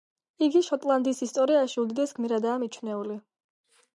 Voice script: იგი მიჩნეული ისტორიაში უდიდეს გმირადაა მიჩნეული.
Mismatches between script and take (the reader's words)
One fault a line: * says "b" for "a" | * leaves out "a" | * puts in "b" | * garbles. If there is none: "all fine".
* says "შოტლანდიის" for "მიჩნეული"